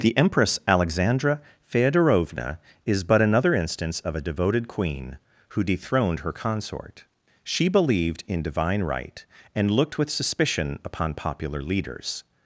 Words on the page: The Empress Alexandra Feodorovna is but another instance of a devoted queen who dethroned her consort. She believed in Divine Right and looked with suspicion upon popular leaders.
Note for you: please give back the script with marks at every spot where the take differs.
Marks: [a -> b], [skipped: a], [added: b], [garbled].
The Empress Alexandra Feodorovna is but another instance of a devoted queen who dethroned her consort. She believed in Divine Right and looked with suspicion upon popular leaders.